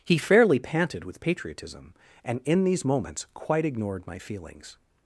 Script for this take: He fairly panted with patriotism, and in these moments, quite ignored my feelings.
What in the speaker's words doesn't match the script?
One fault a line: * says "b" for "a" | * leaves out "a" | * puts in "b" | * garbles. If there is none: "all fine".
all fine